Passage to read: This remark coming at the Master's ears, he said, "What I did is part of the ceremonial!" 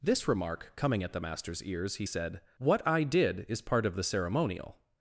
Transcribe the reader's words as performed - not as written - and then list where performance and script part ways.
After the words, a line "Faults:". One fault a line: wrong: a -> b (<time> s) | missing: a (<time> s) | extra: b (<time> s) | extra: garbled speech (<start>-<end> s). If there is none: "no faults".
This remark coming at the Master's ears, he said, "What I did is part of the ceremonial!"
Faults:
no faults